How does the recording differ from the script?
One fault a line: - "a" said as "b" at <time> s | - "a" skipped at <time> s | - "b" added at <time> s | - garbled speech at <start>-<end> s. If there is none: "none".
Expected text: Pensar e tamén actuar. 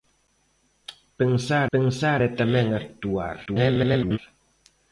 - "pensar" added at 1.7 s
- garbled speech at 3.5-4.2 s